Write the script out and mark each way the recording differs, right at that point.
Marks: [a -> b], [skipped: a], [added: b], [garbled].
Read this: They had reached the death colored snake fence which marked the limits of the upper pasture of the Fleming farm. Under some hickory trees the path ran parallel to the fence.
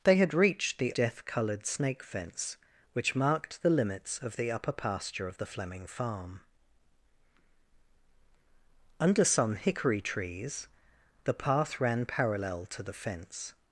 They had reached the death colored snake fence which marked the limits of the upper pasture of the Fleming farm. Under some hickory trees the path ran parallel to the fence.